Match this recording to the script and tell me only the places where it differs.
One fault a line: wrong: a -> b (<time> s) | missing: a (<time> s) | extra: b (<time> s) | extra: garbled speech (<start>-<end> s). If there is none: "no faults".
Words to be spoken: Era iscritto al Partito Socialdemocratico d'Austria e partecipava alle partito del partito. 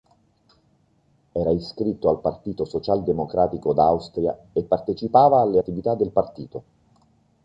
wrong: partito -> attività (5.5 s)